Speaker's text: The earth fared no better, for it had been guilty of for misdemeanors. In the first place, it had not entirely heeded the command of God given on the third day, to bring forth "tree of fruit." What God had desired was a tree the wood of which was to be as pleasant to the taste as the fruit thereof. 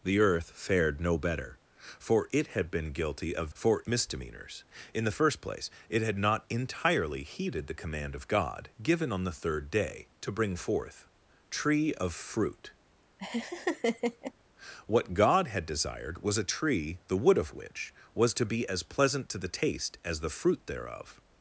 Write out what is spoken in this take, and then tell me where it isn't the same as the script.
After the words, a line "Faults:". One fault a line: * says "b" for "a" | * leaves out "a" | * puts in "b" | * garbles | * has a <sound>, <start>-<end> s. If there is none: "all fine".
The earth fared no better, for it had been guilty of for misdemeanors. In the first place, it had not entirely heeded the command of God given on the third day, to bring forth "tree of fruit." What God had desired was a tree the wood of which was to be as pleasant to the taste as the fruit thereof.
Faults:
* has a laugh, 13.2-14.3 s